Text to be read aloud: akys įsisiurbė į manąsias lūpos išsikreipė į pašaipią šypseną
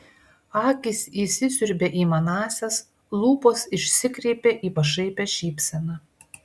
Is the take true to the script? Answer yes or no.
yes